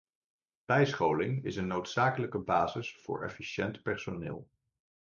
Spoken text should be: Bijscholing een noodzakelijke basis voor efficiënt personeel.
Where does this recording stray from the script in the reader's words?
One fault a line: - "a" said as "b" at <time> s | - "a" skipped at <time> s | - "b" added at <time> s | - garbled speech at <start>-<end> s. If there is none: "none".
- "is" added at 1.4 s